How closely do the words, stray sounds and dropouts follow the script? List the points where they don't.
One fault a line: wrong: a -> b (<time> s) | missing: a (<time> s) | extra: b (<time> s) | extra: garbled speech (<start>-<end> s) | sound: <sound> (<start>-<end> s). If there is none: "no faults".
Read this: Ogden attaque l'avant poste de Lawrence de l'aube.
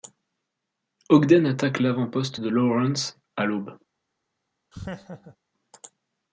wrong: de -> à (3.3 s)
sound: laugh (4.7-5.4 s)